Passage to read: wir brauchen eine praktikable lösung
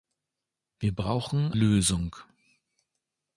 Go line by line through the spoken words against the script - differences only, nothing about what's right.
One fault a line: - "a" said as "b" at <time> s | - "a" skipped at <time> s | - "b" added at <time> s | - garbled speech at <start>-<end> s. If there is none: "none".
- "eine praktikable" skipped at 1.5 s